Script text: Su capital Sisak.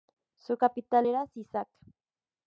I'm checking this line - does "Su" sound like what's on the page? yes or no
yes